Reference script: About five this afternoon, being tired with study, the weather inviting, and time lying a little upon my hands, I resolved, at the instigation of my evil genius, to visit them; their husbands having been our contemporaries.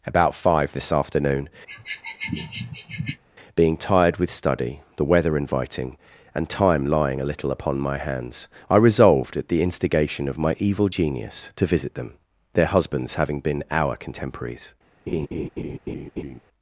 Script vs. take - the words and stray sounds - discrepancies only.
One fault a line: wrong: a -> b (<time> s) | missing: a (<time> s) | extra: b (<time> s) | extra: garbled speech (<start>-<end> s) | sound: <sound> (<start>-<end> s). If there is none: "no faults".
sound: sniff (1.7-3.2 s)
sound: laugh (15.1-16.4 s)